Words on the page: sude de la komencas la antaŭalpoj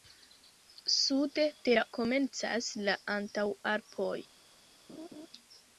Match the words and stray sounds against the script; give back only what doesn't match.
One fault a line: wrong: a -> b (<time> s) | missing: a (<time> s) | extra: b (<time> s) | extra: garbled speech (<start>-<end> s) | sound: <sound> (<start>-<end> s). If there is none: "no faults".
sound: laugh (4.9-5.3 s)